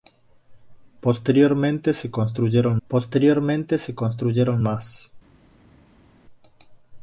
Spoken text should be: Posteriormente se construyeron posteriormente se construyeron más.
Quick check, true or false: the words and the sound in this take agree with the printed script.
true